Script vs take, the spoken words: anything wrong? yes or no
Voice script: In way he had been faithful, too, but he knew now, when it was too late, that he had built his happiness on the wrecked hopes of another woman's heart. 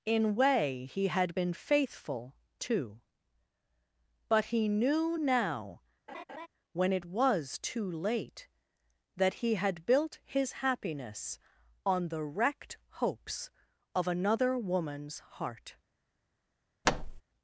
no